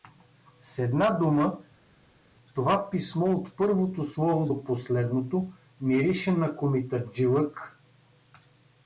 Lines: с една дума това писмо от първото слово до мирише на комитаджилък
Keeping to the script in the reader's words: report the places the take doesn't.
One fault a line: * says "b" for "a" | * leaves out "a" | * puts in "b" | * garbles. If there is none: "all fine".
* puts in "последното"